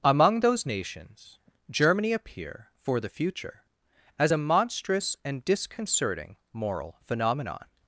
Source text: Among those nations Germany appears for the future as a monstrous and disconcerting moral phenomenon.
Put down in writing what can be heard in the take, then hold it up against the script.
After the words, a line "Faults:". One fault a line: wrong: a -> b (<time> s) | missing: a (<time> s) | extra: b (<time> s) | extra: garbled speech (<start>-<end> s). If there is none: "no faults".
Among those nations Germany appear for the future as a monstrous and disconcerting moral phenomenon.
Faults:
wrong: appears -> appear (2.1 s)